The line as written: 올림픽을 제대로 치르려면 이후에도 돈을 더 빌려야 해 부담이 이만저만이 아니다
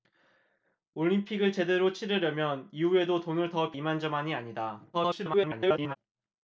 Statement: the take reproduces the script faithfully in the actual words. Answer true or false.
false